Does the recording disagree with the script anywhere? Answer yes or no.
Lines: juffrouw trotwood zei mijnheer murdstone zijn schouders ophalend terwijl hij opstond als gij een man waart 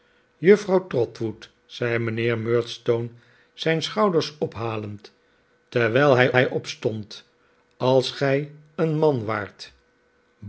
yes